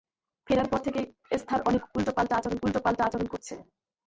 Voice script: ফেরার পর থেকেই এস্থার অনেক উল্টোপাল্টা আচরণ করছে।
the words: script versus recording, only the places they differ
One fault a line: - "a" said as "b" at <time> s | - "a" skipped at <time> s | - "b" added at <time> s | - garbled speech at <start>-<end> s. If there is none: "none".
- "উল্টোপাল্টা আচরণ" added at 2.6 s